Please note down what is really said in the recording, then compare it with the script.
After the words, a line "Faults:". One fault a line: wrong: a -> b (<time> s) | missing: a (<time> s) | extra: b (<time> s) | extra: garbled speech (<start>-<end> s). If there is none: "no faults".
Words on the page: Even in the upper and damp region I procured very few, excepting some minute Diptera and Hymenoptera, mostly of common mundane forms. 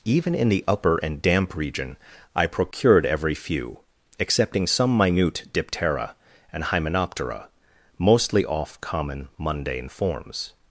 Even in the upper and damp region I procured every few, excepting some minute Diptera and Hymenoptera, mostly off common mundane forms.
Faults:
wrong: very -> every (3.0 s)
wrong: of -> off (8.4 s)